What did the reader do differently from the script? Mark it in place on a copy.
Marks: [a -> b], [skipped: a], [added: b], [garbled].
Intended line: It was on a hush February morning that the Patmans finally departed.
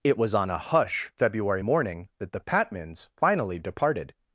It was on a hush February morning that the Patmans finally departed.